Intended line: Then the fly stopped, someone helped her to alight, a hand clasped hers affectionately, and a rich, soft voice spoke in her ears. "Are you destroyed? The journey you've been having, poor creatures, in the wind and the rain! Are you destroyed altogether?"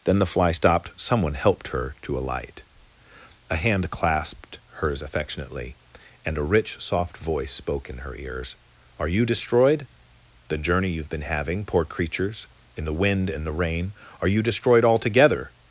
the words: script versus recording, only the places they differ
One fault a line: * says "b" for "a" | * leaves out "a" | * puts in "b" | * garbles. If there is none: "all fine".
all fine